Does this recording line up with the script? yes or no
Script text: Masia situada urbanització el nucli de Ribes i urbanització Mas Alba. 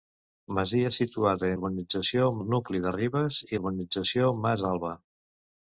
yes